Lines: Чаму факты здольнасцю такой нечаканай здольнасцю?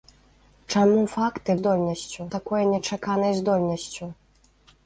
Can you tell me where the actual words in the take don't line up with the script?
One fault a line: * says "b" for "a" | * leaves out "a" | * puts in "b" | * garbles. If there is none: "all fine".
all fine